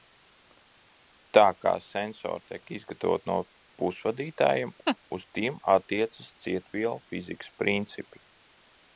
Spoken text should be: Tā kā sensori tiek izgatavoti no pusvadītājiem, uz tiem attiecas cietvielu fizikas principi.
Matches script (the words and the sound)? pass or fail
fail